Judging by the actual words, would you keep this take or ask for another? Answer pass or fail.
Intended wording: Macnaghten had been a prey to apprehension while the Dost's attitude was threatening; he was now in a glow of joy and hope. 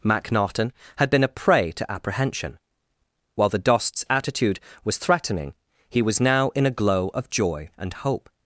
pass